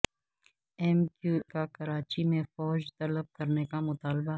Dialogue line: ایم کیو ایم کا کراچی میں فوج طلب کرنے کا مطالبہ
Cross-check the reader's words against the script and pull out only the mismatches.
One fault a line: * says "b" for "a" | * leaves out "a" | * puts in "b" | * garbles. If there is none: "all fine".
* leaves out "ایم"